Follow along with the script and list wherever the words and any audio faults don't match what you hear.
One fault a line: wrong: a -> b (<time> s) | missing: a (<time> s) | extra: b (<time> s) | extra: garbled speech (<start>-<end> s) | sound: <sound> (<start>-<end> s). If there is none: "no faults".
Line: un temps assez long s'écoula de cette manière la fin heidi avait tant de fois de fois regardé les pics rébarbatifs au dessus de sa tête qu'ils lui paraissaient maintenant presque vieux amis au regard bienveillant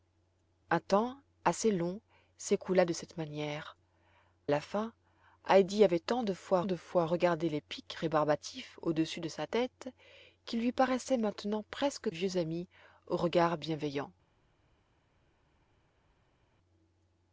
no faults